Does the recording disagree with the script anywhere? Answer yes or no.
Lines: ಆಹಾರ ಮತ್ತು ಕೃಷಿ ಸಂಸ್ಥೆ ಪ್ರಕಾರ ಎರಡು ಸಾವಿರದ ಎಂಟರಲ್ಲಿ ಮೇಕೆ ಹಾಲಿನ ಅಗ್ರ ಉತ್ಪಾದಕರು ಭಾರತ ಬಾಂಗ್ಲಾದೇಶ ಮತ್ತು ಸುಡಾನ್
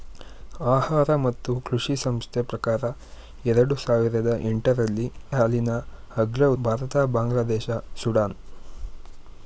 yes